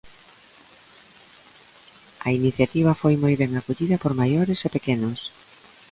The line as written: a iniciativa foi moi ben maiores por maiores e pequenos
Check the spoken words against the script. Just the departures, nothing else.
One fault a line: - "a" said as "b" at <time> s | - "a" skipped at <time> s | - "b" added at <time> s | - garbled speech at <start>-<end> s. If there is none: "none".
- "maiores" said as "acollida" at 3.6 s